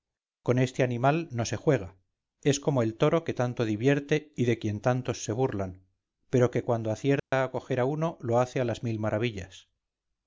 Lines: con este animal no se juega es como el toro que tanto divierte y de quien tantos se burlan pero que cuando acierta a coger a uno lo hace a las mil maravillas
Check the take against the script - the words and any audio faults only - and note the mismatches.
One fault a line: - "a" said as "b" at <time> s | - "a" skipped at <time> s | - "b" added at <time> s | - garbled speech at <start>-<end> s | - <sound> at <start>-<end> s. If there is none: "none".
- dropout at 7.2-7.3 s